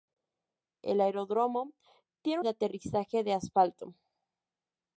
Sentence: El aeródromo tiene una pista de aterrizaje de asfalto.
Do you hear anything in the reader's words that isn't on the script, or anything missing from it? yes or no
yes